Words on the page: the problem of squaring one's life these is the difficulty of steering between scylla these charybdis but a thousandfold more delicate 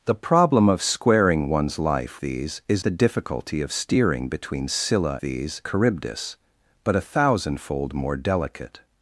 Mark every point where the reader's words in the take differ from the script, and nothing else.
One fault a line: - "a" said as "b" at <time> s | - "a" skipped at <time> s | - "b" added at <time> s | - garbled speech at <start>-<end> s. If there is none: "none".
none